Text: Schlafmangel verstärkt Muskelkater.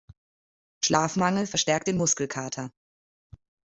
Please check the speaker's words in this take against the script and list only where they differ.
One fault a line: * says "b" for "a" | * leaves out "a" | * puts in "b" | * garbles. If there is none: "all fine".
* puts in "den"